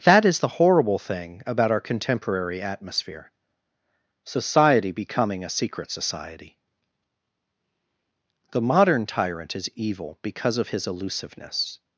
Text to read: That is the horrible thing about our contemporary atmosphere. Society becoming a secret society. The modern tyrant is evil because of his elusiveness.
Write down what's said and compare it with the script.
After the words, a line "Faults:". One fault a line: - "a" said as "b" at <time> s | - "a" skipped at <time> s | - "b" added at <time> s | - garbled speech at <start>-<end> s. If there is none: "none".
That is the horrible thing about our contemporary atmosphere. Society becoming a secret society. The modern tyrant is evil because of his elusiveness.
Faults:
none